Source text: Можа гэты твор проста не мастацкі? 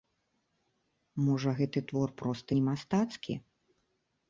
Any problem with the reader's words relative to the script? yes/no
no